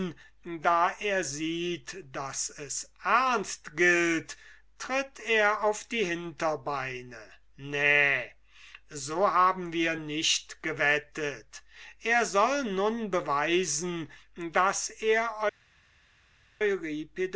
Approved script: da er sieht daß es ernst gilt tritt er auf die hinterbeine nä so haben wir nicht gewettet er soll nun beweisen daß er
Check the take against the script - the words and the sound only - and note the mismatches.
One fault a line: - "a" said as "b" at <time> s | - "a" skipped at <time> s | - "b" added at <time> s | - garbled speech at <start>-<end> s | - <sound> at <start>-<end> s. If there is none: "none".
none